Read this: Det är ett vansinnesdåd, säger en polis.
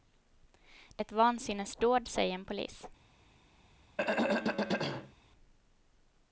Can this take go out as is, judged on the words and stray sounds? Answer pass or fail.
fail